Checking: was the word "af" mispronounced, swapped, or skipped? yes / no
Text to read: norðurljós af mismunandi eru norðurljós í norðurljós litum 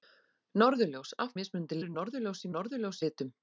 no